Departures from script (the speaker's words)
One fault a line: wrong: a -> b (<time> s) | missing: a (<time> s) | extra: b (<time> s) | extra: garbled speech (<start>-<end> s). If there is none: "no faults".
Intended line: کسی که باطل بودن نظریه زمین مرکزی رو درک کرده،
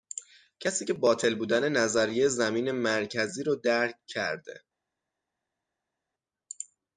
no faults